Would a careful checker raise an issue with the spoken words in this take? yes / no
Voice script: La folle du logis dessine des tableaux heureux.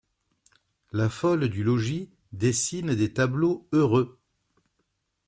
no